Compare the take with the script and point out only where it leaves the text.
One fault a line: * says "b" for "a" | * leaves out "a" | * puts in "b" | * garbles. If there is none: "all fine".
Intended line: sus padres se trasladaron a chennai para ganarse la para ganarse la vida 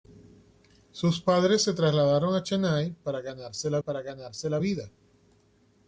all fine